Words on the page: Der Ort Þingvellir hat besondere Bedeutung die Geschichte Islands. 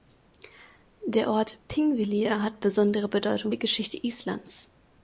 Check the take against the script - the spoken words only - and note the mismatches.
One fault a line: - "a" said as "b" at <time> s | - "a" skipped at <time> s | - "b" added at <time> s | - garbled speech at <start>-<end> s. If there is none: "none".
none